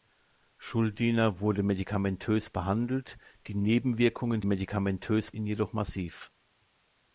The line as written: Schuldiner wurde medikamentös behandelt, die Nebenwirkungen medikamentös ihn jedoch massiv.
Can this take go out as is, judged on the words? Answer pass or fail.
pass